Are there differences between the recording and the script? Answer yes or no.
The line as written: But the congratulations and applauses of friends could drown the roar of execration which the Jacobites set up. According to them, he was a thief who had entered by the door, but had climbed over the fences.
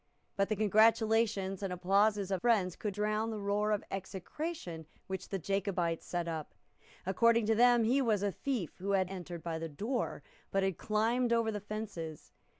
no